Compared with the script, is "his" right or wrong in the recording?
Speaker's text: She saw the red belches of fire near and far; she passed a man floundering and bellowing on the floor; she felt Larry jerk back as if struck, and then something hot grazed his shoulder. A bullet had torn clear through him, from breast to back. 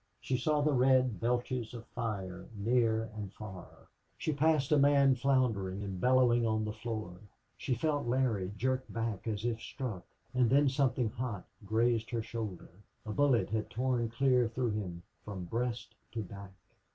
wrong